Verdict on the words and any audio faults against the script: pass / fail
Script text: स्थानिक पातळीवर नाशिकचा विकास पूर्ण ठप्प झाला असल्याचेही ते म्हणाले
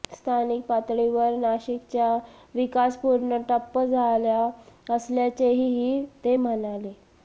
pass